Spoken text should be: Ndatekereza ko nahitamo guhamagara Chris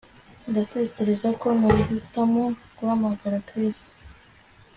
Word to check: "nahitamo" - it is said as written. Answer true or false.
true